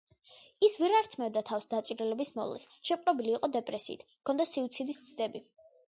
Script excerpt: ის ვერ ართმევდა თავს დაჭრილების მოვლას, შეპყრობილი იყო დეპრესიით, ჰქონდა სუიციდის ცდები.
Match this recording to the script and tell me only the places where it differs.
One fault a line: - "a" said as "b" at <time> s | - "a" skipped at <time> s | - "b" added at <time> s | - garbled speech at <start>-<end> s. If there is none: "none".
none